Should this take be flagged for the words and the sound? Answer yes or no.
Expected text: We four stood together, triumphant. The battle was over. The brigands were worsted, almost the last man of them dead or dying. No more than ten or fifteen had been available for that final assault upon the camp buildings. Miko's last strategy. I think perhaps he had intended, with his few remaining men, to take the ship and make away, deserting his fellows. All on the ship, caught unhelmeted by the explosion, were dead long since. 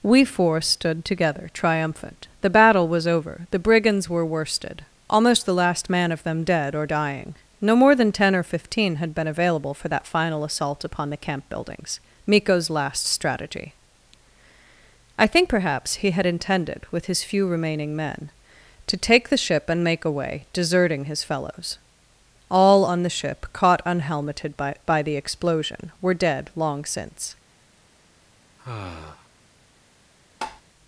yes